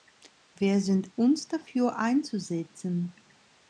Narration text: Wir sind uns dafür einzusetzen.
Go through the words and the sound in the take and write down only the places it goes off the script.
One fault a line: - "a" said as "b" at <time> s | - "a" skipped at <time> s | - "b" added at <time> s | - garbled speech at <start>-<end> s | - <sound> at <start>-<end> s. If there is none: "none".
none